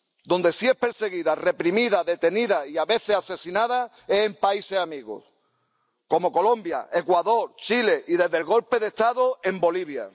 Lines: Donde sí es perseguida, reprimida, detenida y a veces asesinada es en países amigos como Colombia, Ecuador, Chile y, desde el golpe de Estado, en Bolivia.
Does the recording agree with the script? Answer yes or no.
yes